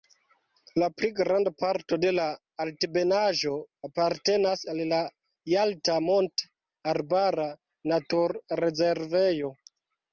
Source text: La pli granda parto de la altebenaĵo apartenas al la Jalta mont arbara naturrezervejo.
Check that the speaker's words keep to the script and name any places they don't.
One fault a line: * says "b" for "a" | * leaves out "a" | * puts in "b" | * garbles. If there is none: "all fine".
all fine